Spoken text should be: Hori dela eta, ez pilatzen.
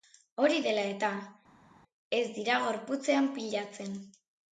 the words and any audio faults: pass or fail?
fail